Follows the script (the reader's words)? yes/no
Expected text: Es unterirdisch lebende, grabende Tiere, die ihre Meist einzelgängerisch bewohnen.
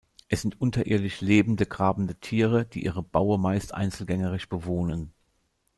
no